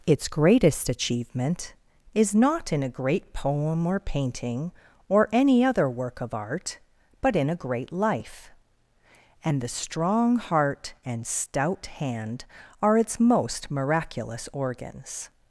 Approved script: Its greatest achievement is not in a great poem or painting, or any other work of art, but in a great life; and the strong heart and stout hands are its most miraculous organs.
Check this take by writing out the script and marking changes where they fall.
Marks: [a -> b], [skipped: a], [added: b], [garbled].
Its greatest achievement is not in a great poem or painting, or any other work of art, but in a great life; and the strong heart and stout [hands -> hand] are its most miraculous organs.